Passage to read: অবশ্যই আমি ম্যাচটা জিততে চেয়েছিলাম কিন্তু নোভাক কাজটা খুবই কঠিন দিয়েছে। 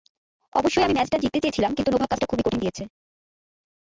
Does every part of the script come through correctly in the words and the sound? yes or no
yes